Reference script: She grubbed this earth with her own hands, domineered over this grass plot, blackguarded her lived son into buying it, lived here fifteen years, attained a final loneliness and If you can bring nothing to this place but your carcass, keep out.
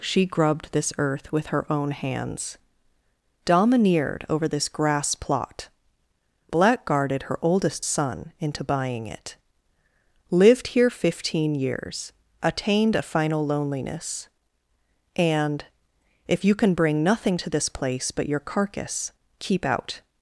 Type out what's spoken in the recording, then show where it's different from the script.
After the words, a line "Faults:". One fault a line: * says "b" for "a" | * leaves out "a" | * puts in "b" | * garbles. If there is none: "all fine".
She grubbed this earth with her own hands, domineered over this grass plot, blackguarded her oldest son into buying it, lived here fifteen years, attained a final loneliness and If you can bring nothing to this place but your carcass, keep out.
Faults:
* says "oldest" for "lived"